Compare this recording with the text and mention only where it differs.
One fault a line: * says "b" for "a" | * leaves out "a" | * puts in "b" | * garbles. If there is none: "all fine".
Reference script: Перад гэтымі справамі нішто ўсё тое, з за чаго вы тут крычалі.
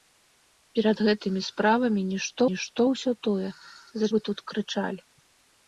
* puts in "нішто"
* leaves out "чаго"